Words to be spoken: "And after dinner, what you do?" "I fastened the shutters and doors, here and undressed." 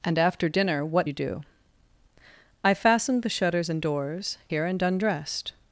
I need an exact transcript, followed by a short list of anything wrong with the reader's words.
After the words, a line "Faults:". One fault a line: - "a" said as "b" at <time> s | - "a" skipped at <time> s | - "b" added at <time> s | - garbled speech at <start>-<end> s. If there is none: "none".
"And after dinner, what you do?" "I fastened the shutters and doors, here and undressed."
Faults:
none